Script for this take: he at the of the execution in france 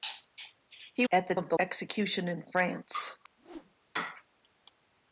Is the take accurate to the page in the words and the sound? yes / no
no